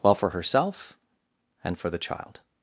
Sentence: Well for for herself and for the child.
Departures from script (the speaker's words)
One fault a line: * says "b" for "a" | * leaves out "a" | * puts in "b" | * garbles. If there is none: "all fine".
* leaves out "for"